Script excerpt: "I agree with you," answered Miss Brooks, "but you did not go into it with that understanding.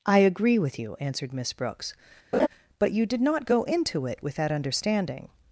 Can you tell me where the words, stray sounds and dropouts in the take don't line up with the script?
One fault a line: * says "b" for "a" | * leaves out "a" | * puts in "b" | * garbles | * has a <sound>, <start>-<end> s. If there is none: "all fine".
* has a laugh, 2.3-2.5 s